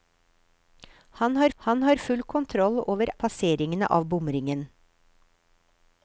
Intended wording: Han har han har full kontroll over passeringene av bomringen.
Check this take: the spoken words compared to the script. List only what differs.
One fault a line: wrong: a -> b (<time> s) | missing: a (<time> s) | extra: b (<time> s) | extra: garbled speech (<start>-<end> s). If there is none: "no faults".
no faults